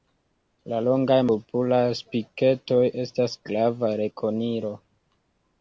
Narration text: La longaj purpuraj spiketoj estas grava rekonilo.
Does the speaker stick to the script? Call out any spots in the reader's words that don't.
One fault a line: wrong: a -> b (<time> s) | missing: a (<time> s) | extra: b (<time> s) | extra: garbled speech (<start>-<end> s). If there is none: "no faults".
no faults